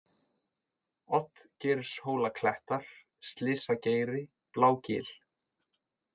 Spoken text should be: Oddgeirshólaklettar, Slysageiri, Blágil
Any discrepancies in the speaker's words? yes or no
no